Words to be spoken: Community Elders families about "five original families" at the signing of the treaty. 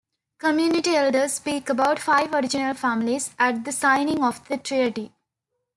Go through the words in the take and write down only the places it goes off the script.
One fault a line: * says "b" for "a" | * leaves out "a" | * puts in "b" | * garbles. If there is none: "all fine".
* says "speak" for "families"